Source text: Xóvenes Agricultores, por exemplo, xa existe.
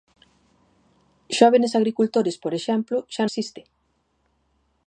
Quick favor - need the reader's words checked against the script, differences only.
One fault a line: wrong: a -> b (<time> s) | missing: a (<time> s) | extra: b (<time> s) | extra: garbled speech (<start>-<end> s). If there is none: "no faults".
no faults